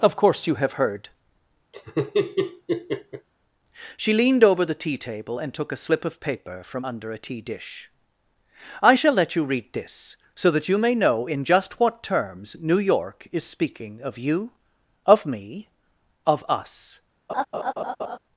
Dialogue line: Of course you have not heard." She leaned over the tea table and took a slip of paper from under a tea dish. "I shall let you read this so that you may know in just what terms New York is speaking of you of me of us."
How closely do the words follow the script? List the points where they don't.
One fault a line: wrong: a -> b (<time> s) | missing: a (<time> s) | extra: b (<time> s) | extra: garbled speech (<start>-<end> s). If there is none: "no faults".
missing: not (0.7 s)